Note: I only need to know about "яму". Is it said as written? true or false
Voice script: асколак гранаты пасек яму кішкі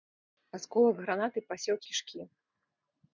false